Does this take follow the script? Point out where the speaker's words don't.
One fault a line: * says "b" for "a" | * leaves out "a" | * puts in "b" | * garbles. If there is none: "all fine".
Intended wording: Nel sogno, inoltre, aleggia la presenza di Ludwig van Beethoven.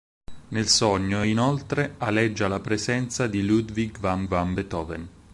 * puts in "van"